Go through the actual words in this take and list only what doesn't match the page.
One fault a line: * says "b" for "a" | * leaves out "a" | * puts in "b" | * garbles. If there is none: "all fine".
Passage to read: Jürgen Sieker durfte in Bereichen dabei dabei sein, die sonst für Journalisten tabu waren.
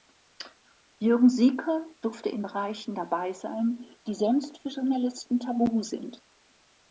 * leaves out "dabei"
* says "sind" for "waren"